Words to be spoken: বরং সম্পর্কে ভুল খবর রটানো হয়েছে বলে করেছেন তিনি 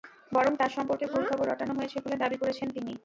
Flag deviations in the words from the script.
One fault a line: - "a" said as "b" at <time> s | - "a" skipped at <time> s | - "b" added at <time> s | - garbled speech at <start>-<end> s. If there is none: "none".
- "তাঁর" added at 0.6 s
- "দাবি" added at 2.2 s